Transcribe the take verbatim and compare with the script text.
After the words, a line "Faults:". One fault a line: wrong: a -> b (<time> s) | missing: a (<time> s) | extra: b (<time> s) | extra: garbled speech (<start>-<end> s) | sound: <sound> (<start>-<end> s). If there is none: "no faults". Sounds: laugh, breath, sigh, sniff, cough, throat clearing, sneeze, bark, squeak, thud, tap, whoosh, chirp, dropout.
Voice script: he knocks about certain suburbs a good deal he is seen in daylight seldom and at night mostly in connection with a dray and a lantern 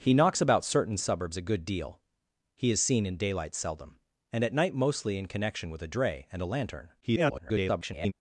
he knocks about certain suburbs a good deal he is seen in daylight seldom and at night mostly in connection with a dray and a lantern [garbled]
Faults:
extra: garbled speech (7.0-8.1 s)